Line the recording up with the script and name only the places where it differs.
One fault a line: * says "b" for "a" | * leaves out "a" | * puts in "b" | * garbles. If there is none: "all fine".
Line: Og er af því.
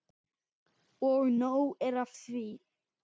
* puts in "nóg"